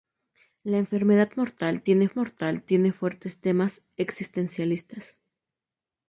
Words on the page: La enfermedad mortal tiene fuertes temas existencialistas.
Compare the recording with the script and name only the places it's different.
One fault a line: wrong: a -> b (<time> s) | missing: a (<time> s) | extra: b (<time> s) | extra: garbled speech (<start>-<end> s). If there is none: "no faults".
extra: mortal tiene (2.1 s)